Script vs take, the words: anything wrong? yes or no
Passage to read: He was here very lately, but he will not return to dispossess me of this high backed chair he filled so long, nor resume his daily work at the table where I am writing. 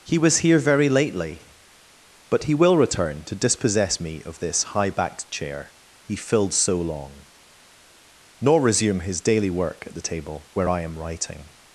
yes